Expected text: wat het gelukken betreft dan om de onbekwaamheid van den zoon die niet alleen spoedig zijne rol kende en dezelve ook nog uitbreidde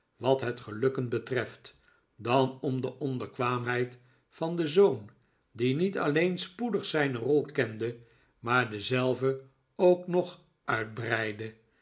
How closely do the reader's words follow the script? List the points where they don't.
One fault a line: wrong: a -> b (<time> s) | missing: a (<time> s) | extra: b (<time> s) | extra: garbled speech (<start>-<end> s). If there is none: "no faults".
wrong: en -> maar (8.4 s)